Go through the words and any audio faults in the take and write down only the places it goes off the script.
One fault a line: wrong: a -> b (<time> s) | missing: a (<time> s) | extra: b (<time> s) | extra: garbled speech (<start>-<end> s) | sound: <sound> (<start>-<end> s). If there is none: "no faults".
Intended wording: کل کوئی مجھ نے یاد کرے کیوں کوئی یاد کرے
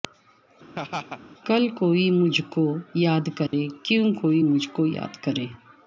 sound: laugh (0.8-1.2 s)
wrong: نے -> کو (2.5 s)
sound: dropout (3.5-3.5 s)
extra: مجھ کو (4.4 s)